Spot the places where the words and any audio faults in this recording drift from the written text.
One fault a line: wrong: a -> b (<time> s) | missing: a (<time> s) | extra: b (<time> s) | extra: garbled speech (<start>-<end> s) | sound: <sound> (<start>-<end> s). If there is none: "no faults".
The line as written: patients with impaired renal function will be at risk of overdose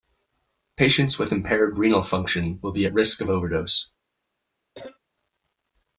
sound: cough (4.7-5.0 s)